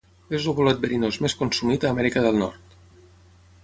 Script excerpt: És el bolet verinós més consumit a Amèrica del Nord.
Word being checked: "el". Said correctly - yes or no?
yes